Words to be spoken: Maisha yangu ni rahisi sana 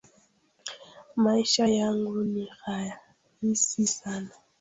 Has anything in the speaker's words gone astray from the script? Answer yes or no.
no